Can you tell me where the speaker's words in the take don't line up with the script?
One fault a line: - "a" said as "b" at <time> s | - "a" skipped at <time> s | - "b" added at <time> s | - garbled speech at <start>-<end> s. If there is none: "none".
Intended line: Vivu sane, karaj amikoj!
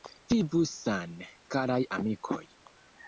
none